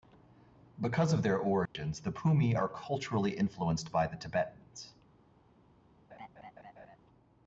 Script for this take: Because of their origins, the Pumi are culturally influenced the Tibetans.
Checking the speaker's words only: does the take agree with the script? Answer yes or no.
no